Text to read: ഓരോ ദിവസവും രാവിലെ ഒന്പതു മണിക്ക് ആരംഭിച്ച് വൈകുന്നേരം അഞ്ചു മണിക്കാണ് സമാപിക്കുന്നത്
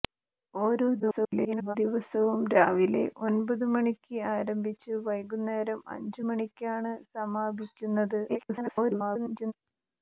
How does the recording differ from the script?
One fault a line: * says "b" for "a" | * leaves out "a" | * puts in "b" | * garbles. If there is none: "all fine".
* garbles
* garbles